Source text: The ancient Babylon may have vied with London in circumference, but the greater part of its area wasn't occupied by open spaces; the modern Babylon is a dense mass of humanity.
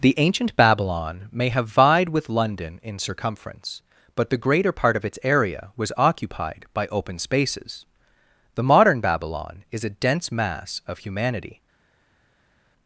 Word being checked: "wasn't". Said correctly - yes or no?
no